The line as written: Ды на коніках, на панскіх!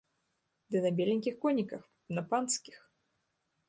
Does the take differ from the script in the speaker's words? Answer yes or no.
yes